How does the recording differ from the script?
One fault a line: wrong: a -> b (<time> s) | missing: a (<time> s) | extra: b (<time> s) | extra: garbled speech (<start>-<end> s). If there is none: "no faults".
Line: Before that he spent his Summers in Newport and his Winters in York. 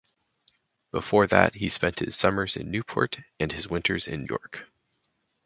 no faults